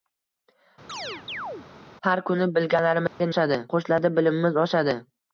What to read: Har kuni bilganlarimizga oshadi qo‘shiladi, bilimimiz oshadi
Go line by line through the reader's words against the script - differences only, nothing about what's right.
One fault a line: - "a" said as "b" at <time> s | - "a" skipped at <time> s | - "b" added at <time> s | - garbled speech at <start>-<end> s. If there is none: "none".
none